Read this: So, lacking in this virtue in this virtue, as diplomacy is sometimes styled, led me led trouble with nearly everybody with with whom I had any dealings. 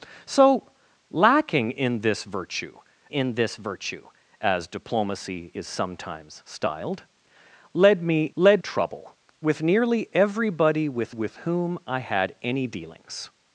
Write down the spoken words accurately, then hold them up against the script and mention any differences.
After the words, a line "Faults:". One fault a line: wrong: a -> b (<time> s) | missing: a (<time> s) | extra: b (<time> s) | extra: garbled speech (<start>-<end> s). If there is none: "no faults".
So, lacking in this virtue in this virtue, as diplomacy is sometimes styled, led me led trouble with nearly everybody with with whom I had any dealings.
Faults:
no faults